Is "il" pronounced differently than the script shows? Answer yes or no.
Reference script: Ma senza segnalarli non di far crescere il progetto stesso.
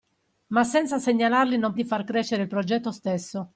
no